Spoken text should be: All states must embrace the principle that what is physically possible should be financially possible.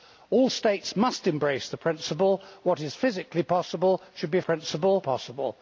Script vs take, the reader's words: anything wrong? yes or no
yes